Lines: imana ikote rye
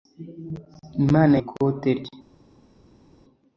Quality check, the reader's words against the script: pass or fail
pass